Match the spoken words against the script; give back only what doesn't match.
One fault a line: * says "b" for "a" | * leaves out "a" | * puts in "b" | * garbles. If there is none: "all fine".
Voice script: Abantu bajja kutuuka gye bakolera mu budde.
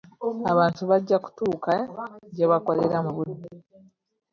all fine